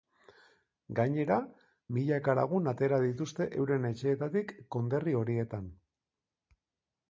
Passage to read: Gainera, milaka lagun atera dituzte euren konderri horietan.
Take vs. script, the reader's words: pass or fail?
fail